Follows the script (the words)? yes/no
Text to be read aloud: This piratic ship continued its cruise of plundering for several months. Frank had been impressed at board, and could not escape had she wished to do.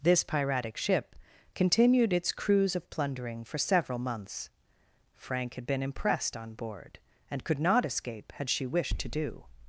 no